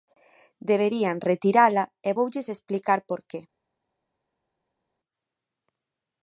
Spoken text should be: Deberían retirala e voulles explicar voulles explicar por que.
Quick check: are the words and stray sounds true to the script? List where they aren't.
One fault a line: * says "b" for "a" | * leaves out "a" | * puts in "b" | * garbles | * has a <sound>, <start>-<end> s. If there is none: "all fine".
* leaves out "voulles explicar"